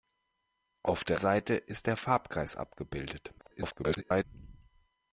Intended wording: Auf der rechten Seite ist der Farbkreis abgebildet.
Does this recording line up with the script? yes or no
no